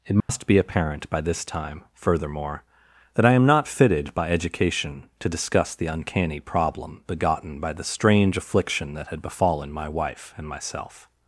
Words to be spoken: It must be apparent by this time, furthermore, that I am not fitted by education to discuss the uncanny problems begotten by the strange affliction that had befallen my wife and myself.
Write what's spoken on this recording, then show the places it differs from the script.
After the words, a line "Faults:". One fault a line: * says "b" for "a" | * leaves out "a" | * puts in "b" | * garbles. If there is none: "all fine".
It must be apparent by this time, furthermore, that I am not fitted by education to discuss the uncanny problem begotten by the strange affliction that had befallen my wife and myself.
Faults:
* says "problem" for "problems"